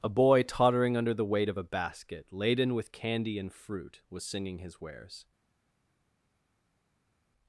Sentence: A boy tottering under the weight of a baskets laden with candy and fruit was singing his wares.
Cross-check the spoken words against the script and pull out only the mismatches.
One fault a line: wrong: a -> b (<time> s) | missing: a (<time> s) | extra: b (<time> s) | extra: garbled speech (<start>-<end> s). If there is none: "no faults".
wrong: baskets -> basket (1.6 s)